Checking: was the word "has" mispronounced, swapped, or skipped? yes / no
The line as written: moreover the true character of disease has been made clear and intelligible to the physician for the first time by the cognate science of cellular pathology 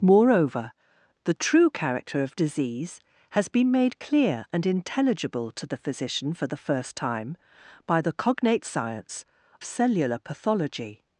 no